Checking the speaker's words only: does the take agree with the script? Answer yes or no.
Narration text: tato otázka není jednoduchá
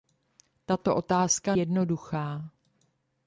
no